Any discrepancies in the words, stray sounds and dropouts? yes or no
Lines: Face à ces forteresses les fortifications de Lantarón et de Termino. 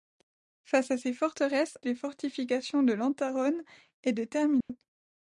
yes